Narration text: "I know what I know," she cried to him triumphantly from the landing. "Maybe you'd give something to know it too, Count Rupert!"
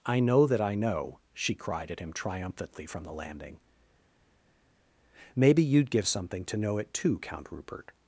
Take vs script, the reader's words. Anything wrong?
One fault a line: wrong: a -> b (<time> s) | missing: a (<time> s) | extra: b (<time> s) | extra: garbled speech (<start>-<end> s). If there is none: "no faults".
wrong: what -> that (0.5 s)
wrong: to -> at (1.9 s)